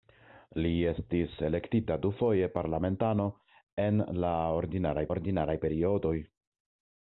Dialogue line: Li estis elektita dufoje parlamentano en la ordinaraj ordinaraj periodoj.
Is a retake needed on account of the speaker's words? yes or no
no